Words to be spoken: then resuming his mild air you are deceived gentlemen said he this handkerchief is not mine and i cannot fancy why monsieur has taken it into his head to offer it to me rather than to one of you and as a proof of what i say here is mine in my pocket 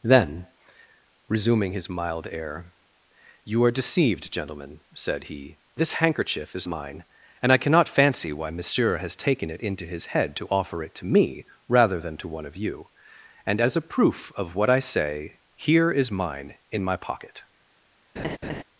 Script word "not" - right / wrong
wrong